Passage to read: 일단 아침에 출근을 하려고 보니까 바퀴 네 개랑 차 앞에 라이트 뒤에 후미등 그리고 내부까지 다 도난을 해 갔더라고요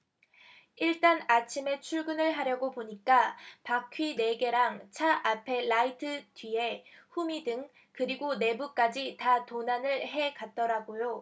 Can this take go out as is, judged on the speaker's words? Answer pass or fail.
pass